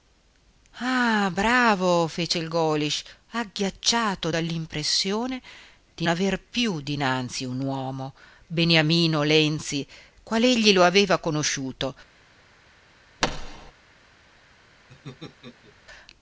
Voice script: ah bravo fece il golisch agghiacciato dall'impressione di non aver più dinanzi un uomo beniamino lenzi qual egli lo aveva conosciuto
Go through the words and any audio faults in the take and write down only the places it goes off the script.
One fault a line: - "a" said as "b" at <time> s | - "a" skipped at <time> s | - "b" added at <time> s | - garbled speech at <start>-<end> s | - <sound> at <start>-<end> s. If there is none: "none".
- "non" skipped at 6.1 s
- thud at 13.2-13.7 s
- laugh at 14.9-15.8 s